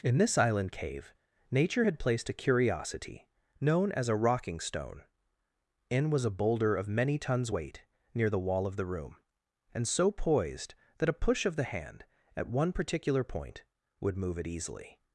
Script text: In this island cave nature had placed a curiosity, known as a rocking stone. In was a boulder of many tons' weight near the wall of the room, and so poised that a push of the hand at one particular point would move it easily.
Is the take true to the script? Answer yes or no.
yes